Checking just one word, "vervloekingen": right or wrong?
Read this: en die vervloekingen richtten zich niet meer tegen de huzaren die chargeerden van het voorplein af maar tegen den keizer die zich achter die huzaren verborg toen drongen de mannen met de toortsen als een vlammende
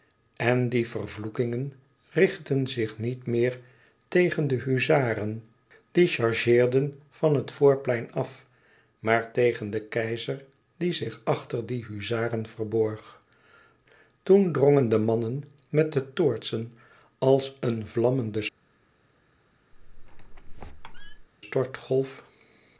right